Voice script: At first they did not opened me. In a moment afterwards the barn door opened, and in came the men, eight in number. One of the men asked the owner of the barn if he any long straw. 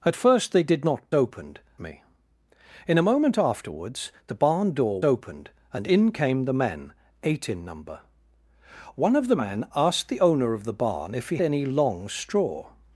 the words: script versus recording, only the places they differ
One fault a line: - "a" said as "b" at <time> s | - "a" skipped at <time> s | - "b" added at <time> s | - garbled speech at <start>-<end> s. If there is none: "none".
none